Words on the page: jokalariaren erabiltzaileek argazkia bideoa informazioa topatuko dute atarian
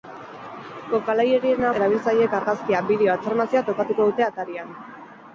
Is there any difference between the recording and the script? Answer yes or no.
no